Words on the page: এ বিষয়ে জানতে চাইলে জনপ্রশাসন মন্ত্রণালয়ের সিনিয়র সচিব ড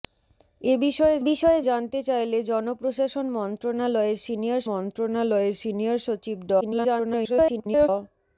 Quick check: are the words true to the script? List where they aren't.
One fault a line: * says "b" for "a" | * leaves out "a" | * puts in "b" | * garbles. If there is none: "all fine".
* puts in "বিষয়ে"
* puts in "মন্ত্রণালয়ের সিনিয়র"
* garbles